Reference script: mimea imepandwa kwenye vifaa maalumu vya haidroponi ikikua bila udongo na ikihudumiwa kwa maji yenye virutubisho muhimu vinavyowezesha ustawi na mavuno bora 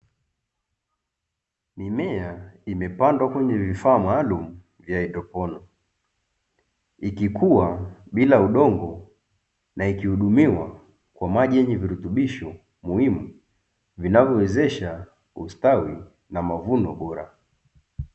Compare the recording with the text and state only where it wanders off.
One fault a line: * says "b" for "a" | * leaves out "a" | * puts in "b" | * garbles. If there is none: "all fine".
all fine